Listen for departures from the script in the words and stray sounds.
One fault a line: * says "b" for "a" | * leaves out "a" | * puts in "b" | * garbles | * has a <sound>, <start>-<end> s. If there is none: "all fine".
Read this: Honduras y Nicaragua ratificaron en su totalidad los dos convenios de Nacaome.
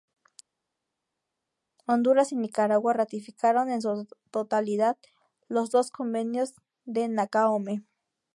all fine